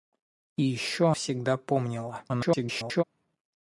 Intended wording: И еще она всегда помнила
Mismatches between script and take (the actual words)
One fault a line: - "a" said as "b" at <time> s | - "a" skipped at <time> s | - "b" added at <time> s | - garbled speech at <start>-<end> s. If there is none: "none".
- "она" skipped at 1.1 s
- garbled speech at 2.3-3.0 s